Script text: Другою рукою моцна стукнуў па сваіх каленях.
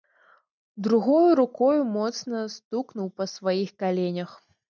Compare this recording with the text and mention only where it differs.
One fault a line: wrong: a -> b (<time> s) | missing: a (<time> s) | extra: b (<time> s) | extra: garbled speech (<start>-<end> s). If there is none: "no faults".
no faults